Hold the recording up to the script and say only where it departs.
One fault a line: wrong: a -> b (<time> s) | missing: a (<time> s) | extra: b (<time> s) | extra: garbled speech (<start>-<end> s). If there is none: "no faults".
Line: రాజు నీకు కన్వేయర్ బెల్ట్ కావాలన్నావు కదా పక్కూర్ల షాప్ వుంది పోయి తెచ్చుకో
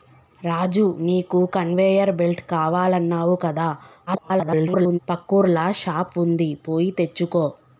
extra: garbled speech (4.1-5.0 s)